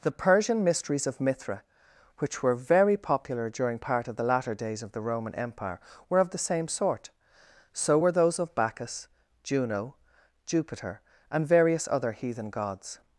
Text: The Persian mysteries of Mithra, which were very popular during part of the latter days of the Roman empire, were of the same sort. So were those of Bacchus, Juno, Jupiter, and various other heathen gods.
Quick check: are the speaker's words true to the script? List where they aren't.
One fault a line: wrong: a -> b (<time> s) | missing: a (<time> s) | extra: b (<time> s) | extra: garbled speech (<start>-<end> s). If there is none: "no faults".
no faults